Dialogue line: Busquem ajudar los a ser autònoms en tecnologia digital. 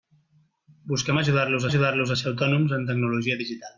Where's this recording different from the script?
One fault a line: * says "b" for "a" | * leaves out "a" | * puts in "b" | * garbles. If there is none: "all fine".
* puts in "ajudar los"